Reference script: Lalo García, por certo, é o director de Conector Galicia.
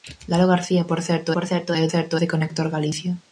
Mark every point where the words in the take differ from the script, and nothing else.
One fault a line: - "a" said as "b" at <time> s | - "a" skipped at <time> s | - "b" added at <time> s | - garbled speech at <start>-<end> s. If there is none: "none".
- "por certo" added at 1.3 s
- "director" said as "certo" at 1.9 s